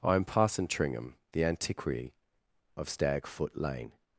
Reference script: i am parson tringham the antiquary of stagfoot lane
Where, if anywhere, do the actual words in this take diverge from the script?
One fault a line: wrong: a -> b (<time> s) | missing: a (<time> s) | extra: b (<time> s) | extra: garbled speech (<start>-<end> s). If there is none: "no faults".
no faults